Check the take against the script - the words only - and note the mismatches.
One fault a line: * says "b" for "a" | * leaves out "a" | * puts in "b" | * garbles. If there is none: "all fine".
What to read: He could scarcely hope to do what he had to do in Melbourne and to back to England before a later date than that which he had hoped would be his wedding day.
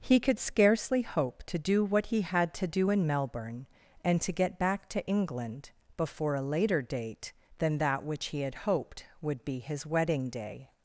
* puts in "get"